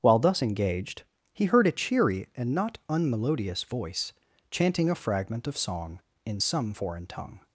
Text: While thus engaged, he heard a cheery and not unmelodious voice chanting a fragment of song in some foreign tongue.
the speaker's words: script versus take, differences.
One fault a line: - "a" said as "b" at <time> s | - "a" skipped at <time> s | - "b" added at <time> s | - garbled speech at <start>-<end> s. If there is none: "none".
none